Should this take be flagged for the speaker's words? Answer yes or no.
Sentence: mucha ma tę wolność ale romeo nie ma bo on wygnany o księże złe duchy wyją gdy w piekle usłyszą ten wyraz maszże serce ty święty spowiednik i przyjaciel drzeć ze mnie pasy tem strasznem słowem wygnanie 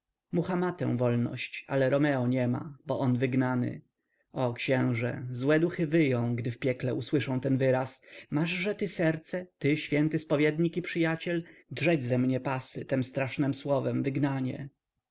yes